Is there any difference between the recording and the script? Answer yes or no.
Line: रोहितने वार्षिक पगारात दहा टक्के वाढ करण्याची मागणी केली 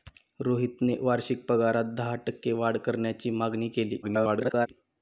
yes